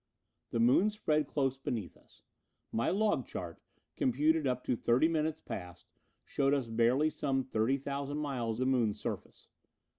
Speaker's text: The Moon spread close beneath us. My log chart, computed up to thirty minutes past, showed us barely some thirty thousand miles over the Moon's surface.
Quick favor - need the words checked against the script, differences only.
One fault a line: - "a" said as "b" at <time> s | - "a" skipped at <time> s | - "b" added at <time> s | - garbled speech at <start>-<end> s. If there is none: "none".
- "over" skipped at 8.6 s